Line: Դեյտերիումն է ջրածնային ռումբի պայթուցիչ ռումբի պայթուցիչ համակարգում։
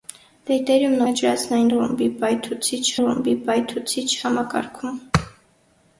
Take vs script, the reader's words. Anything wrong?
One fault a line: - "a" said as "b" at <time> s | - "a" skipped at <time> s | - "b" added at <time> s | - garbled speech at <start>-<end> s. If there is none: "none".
none